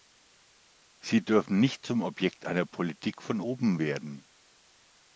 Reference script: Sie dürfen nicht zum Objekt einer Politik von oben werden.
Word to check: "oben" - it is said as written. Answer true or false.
true